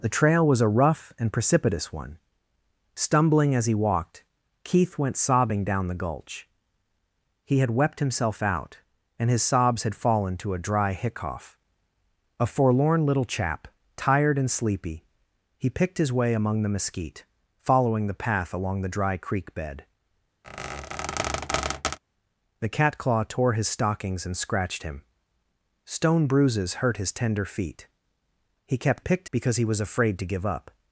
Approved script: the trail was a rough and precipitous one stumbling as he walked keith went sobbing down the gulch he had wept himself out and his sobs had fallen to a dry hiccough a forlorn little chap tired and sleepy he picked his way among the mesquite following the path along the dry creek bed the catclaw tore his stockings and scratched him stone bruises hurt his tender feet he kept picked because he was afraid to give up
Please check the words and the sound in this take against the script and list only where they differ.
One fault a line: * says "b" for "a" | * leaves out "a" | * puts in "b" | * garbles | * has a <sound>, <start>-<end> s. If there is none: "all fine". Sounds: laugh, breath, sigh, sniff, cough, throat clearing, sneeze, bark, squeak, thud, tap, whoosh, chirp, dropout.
* has a squeak, 20.4-22.0 s